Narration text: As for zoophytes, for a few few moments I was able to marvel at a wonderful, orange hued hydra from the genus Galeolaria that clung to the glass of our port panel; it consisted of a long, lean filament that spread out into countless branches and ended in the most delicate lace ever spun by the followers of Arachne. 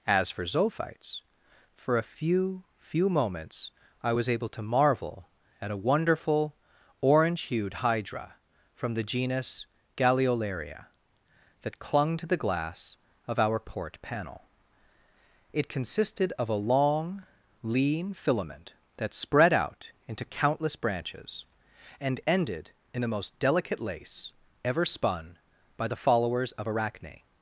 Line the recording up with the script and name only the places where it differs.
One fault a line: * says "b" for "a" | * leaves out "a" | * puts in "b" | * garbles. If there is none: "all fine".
all fine